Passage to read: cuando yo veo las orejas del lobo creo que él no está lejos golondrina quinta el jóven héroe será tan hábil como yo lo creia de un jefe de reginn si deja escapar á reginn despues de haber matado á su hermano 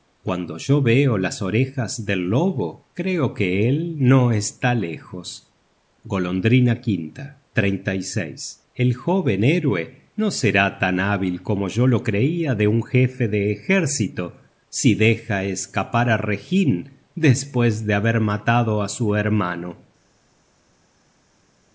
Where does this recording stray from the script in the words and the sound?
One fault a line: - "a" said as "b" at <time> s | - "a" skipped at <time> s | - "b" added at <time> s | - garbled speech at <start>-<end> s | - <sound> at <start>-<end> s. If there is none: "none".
- "no" added at 10.2 s
- "reginn" said as "ejército" at 13.5 s